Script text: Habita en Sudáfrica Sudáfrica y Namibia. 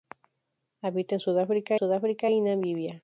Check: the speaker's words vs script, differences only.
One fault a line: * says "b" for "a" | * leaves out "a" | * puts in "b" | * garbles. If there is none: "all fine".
all fine